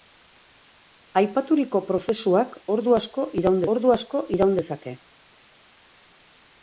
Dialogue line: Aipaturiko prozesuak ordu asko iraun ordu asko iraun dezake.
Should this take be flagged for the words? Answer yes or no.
no